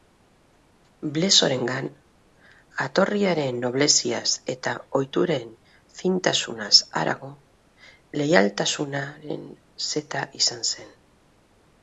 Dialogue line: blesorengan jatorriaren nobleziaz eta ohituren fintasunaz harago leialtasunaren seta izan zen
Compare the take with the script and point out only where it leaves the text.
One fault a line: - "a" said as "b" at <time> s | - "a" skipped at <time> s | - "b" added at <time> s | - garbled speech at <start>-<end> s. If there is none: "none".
none